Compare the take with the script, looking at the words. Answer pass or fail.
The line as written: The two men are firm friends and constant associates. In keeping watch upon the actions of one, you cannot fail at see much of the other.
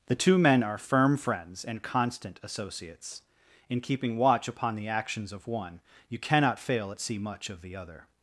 pass